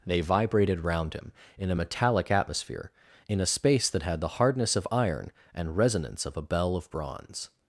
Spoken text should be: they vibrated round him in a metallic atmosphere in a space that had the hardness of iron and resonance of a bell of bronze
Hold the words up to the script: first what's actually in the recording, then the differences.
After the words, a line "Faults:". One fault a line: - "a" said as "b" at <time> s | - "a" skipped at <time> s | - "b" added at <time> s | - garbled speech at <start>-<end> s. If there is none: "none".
they vibrated round him in a metallic atmosphere in a space that had the hardness of iron and resonance of a bell of bronze
Faults:
none